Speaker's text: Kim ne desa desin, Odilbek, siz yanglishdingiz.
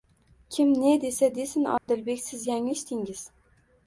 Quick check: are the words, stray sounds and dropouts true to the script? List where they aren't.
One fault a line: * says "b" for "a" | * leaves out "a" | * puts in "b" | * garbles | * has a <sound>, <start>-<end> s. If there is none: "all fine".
* has a dropout, 1.8-1.9 s